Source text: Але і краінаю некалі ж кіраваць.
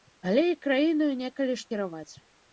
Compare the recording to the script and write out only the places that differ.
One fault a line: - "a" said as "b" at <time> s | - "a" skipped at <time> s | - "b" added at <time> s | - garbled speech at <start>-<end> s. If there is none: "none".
none